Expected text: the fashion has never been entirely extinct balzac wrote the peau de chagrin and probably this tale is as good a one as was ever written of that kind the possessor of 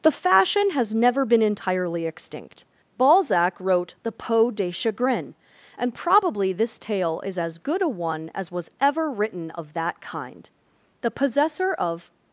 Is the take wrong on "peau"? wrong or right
right